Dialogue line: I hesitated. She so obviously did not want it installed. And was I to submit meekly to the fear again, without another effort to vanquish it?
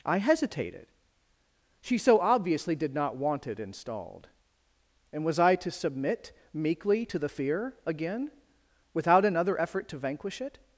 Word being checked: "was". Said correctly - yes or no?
yes